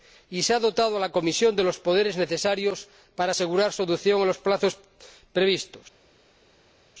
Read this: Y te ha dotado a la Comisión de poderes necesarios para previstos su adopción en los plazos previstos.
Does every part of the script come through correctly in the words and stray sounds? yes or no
no